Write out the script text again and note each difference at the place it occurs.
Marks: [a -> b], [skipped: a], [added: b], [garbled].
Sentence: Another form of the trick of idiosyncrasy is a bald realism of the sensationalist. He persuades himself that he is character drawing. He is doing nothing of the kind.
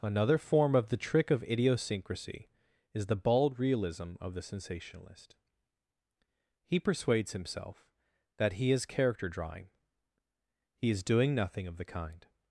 Another form of the trick of idiosyncrasy is [a -> the] bald realism of the sensationalist. He persuades himself that he is character drawing. He is doing nothing of the kind.